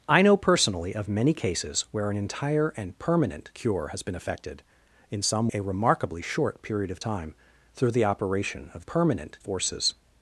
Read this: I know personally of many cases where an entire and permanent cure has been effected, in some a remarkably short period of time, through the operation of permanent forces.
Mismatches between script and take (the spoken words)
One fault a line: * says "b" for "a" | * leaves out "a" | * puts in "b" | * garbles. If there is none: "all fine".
all fine